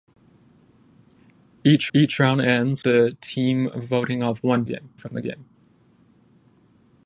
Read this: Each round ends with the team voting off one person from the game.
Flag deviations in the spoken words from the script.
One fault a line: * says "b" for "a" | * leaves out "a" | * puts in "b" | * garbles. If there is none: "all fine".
* puts in "each"
* leaves out "with"
* says "game" for "person"